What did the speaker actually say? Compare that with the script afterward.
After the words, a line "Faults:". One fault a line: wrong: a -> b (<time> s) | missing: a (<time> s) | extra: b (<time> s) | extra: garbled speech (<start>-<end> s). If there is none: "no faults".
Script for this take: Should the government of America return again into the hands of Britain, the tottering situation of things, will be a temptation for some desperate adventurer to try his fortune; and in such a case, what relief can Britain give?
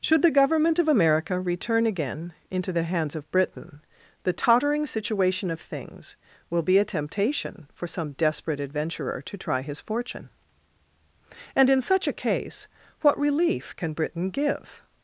Should the government of America return again into the hands of Britain, the tottering situation of things, will be a temptation for some desperate adventurer to try his fortune; and in such a case, what relief can Britain give?
Faults:
no faults